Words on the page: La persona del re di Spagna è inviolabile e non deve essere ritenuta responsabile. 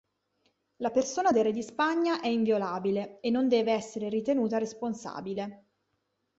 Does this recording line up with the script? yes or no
yes